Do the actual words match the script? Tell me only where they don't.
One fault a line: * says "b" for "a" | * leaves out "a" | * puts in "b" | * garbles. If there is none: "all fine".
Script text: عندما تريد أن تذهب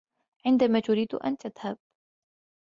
all fine